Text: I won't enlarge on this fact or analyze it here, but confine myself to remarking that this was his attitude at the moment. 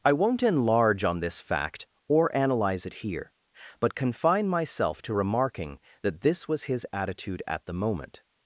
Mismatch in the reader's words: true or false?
false